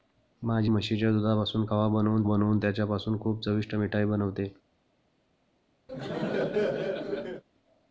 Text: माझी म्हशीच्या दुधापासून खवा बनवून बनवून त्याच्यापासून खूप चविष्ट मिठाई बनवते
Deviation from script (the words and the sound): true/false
true